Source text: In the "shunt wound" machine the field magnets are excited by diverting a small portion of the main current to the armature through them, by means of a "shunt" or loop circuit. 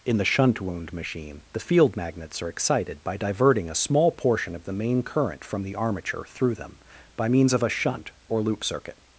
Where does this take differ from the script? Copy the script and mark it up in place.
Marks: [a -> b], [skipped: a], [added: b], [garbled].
In the "shunt wound" machine the field magnets are excited by diverting a small portion of the main current [to -> from] the armature through them, by means of a "shunt" or loop circuit.